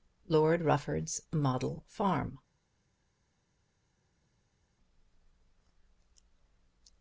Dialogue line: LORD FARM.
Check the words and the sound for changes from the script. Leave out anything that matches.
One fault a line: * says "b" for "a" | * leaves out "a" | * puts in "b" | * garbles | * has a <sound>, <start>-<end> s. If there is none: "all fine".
* puts in "RUFFORD'S MODEL"